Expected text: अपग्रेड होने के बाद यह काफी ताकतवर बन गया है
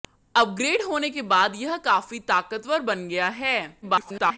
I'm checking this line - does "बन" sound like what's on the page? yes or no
yes